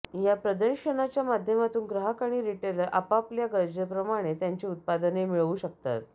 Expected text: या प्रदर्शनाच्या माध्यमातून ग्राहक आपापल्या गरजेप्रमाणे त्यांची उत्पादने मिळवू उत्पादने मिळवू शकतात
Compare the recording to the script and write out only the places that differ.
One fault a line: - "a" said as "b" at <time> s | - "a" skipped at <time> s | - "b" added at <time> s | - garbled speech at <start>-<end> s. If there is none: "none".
- "आणि रिटेलर" added at 2.2 s
- "उत्पादने मिळवू" skipped at 5.5 s